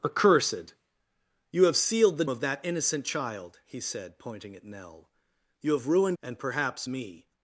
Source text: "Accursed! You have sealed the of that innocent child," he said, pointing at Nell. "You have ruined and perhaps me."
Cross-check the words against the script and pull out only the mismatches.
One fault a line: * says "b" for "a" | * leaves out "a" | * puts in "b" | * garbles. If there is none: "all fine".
all fine